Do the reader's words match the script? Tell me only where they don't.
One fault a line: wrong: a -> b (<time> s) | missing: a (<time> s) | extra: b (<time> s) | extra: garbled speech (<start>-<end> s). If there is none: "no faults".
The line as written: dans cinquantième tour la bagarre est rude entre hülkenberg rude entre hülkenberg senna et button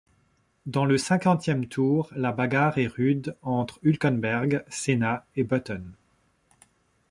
extra: le (0.8 s)
missing: rude entre hülkenberg (4.6 s)